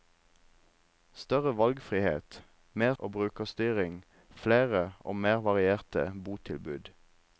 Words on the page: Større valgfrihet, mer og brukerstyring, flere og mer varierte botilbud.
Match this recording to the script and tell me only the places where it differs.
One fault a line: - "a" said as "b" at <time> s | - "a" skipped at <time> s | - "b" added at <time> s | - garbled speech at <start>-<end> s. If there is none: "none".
none